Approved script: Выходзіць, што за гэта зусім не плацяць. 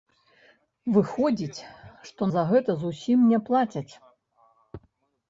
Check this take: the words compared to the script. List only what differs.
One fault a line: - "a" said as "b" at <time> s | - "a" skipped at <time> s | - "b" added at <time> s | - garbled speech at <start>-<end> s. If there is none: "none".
none